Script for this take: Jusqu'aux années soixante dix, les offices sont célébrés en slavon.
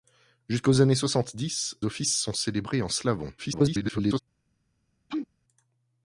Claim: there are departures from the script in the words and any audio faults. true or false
true